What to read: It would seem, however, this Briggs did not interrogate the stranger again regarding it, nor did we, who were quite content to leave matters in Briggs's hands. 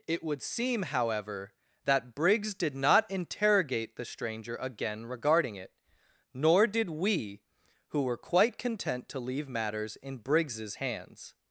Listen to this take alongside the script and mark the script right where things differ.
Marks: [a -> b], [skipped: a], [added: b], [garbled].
It would seem, however, [this -> that] Briggs did not interrogate the stranger again regarding it, nor did we, who were quite content to leave matters in Briggs's hands.